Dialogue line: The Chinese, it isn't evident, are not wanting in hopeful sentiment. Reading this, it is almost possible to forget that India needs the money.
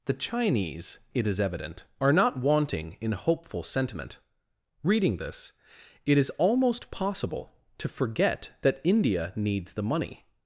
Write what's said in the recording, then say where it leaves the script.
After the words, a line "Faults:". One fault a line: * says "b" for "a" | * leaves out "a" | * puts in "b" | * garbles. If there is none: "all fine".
The Chinese, it is evident, are not wanting in hopeful sentiment. Reading this, it is almost possible to forget that India needs the money.
Faults:
* says "is" for "isn't"